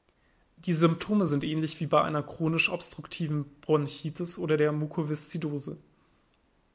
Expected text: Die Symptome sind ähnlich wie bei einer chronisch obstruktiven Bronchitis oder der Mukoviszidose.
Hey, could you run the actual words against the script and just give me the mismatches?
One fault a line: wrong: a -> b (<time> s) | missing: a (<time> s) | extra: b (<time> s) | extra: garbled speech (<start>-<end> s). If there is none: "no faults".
no faults